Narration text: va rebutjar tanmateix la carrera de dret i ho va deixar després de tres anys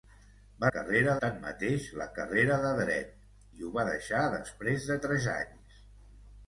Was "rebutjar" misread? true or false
true